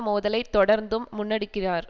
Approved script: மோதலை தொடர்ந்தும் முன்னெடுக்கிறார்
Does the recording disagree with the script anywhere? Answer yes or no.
no